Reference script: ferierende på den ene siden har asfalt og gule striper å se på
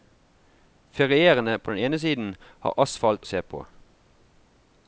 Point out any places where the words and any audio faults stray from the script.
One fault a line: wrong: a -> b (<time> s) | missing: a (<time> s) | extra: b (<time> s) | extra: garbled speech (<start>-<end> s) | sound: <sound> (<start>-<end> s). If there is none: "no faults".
missing: og gule striper (3.3 s)